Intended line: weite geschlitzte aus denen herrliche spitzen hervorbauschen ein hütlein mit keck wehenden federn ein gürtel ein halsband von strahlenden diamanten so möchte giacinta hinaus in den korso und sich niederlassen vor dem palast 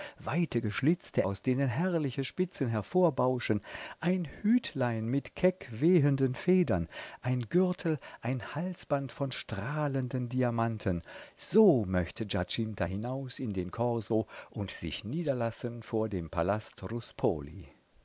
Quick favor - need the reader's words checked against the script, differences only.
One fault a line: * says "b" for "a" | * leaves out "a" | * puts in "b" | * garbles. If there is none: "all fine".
all fine